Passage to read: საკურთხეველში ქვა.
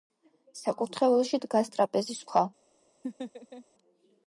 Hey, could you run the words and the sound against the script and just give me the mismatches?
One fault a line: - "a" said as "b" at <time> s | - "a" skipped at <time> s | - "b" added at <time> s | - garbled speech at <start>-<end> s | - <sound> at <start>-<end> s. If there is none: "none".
- "დგას ტრაპეზის" added at 1.4 s
- laugh at 3.0-3.6 s